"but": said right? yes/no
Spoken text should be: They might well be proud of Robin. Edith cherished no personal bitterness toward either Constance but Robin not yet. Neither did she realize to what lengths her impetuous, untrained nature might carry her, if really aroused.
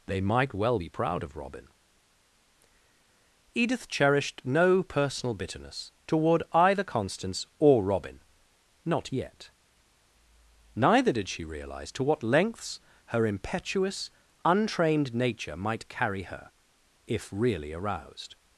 no